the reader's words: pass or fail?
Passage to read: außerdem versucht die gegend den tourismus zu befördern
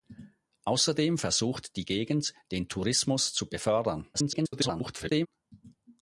fail